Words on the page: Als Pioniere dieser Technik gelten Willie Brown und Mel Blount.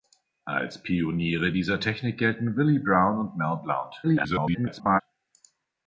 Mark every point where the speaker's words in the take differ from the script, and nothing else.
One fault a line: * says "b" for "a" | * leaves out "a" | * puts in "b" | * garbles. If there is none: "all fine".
* garbles